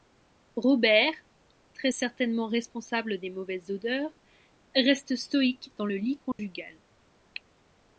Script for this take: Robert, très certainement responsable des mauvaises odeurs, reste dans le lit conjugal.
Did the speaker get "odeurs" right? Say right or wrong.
right